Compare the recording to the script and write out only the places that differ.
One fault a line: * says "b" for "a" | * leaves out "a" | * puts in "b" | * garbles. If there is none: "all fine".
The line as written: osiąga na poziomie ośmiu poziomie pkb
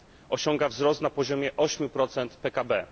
* puts in "wzrost"
* says "procent" for "poziomie"